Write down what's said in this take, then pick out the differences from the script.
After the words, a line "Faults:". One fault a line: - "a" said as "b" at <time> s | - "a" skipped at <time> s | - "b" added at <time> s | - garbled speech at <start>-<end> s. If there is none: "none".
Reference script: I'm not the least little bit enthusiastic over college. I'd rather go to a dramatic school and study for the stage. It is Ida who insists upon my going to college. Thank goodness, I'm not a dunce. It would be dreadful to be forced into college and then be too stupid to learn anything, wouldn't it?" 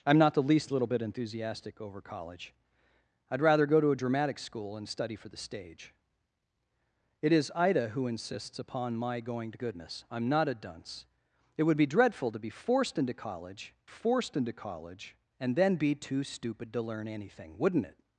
I'm not the least little bit enthusiastic over college. I'd rather go to a dramatic school and study for the stage. It is Ida who insists upon my going to goodness, I'm not a dunce. It would be dreadful to be forced into college forced into college and then be too stupid to learn anything, wouldn't it?"
Faults:
- "college Thank" skipped at 9.6 s
- "forced into college" added at 13.9 s